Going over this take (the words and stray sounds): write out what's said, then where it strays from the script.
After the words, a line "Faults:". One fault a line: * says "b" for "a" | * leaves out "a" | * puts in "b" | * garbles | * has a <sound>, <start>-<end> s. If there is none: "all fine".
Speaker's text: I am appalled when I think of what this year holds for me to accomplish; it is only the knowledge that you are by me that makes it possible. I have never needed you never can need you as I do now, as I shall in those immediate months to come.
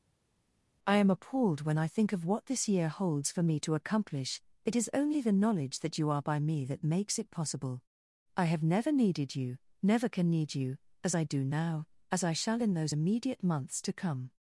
I am appalled when I think of what this year holds for me to accomplish; it is only the knowledge that you are by me that makes it possible. I have never needed you never can need you as I do now, as I shall in those immediate months to come.
Faults:
all fine